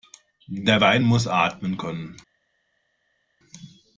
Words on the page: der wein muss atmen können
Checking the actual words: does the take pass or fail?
pass